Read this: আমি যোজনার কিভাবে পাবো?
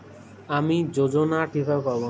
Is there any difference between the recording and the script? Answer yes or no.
no